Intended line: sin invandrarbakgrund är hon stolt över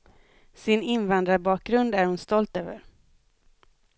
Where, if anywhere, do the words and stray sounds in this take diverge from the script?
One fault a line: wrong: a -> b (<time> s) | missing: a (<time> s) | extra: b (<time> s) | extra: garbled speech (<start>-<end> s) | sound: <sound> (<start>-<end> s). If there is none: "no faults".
no faults